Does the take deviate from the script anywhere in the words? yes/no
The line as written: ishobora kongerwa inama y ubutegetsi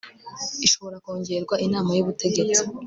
no